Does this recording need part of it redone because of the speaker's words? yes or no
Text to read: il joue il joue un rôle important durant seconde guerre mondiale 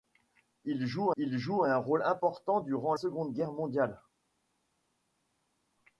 no